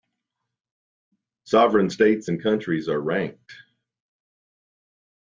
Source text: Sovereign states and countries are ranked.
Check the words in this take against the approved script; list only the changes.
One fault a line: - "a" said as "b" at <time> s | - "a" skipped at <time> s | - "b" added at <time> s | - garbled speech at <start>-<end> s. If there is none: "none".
none